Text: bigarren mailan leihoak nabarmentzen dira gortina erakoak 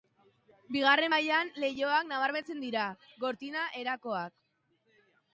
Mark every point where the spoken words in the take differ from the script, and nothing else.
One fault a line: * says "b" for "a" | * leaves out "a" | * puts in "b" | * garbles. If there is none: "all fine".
all fine